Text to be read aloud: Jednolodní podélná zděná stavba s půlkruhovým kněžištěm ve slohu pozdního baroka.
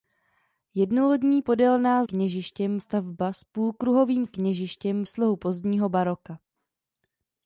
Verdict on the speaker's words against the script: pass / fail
fail